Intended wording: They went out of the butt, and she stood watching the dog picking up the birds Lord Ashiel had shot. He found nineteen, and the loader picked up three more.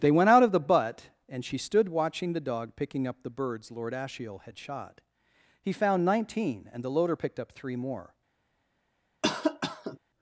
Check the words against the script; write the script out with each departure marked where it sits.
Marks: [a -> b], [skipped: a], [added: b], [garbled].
They went out of the butt, and she stood watching the dog picking up the birds Lord Ashiel had shot. He found nineteen, and the loader picked up three more.